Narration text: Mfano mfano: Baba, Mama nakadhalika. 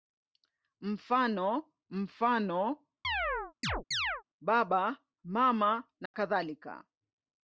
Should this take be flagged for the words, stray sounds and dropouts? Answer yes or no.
yes